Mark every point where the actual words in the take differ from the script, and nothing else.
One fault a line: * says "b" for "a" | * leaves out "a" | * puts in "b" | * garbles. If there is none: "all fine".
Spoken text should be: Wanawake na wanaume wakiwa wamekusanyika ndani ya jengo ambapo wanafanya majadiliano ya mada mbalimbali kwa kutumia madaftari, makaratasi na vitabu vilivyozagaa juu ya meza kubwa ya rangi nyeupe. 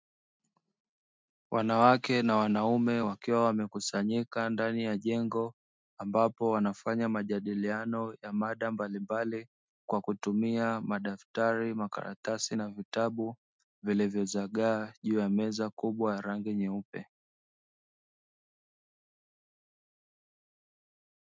all fine